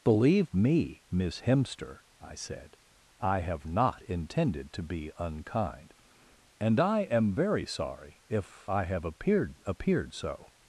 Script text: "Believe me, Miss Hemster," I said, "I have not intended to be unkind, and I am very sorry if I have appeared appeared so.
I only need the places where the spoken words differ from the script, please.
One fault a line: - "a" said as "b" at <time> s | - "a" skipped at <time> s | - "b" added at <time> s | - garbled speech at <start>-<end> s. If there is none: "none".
none